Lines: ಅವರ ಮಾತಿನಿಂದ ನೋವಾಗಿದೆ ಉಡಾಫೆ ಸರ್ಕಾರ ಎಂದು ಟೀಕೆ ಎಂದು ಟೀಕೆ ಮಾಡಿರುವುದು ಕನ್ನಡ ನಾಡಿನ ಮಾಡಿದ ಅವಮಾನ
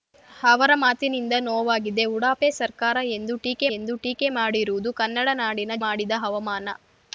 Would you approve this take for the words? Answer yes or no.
yes